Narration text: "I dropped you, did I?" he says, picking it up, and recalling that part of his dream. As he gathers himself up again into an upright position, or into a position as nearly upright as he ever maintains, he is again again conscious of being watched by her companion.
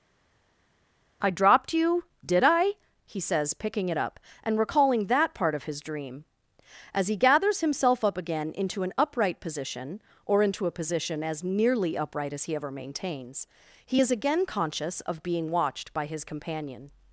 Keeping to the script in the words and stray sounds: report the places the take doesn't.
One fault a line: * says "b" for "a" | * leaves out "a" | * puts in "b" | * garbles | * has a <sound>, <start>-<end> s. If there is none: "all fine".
* leaves out "again"
* says "his" for "her"